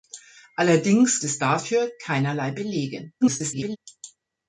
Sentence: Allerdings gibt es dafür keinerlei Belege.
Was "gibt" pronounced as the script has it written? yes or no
no